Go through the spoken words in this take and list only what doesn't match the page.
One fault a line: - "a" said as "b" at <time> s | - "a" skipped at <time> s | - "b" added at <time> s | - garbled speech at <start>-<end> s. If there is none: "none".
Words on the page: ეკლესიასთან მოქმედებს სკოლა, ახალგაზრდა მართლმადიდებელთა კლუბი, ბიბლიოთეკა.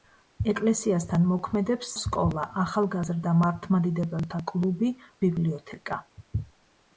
none